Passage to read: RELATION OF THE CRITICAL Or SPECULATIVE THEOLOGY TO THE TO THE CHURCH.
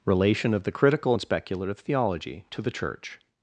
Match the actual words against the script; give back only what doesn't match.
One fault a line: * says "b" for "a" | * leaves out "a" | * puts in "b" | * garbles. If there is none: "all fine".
* says "AND" for "Or"
* leaves out "TO THE"